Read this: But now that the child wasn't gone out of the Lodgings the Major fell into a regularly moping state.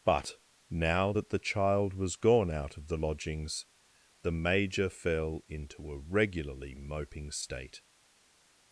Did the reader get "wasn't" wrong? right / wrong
wrong